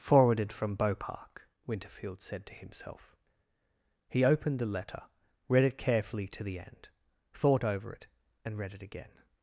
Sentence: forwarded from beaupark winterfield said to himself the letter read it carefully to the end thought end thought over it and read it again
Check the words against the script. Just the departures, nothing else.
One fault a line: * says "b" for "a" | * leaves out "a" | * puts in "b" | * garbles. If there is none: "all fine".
* puts in "he opened"
* leaves out "end thought"